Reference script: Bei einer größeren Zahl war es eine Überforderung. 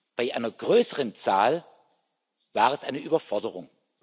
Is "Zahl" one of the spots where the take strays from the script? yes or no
no